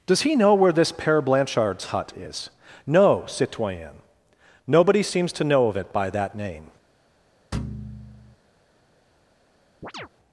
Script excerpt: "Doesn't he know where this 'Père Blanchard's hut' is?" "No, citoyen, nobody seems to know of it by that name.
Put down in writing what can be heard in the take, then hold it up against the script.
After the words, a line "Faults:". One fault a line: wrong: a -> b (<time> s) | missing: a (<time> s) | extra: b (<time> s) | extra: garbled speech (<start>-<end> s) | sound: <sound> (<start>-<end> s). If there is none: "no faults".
"Does he know where this 'Père Blanchard's hut' is?" "No, citoyen, nobody seems to know of it by that name.
Faults:
wrong: Doesn't -> Does (0.1 s)
sound: thud (7.5-8.4 s)
sound: chirp (9.8-10.1 s)